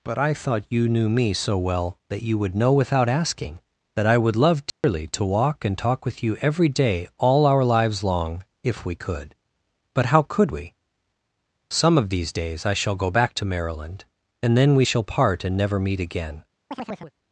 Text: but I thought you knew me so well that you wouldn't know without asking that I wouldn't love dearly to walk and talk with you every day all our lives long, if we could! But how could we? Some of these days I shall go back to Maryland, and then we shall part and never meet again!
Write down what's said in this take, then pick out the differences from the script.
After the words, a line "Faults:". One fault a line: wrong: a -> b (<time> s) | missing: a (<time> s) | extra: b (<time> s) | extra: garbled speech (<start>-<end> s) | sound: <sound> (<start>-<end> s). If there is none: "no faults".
but I thought you knew me so well that you would know without asking that I would love dearly to walk and talk with you every day all our lives long, if we could! But how could we? Some of these days I shall go back to Maryland, and then we shall part and never meet again!
Faults:
wrong: wouldn't -> would (2.4 s)
wrong: wouldn't -> would (4.2 s)
sound: dropout (4.7-4.8 s)
sound: chirp (16.7-17.1 s)